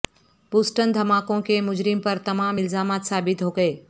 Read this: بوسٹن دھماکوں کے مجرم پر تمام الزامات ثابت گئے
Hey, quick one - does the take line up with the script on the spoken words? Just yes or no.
no